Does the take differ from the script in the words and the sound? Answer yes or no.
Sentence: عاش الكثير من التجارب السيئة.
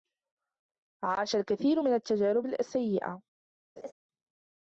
yes